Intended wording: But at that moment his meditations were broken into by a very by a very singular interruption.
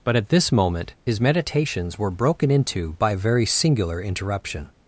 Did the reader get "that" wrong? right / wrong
wrong